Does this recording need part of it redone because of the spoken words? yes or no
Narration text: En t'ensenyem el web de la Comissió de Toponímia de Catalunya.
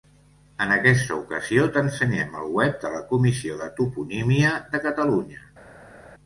yes